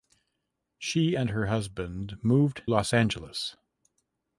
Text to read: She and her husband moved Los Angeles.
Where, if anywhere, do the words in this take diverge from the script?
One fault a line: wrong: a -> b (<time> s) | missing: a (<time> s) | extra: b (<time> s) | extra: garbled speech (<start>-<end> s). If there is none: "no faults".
no faults